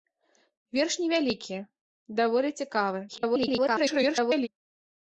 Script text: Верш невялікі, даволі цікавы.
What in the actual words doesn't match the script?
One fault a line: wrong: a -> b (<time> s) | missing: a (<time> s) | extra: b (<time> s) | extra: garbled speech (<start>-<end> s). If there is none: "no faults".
extra: garbled speech (3.1-4.5 s)